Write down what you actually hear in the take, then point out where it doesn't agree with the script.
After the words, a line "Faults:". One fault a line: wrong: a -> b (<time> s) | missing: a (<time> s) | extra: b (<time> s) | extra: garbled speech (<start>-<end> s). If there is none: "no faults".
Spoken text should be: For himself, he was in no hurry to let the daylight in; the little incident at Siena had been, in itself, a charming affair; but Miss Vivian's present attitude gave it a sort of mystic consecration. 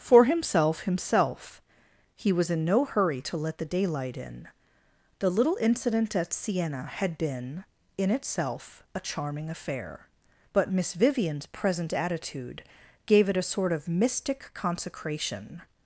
For himself himself, he was in no hurry to let the daylight in; the little incident at Siena had been, in itself, a charming affair; but Miss Vivian's present attitude gave it a sort of mystic consecration.
Faults:
extra: himself (0.8 s)